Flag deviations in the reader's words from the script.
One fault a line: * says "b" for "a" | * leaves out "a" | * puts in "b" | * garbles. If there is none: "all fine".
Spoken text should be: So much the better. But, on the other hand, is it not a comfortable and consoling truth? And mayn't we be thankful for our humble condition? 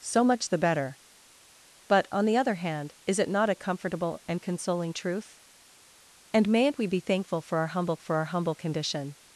* puts in "for our humble"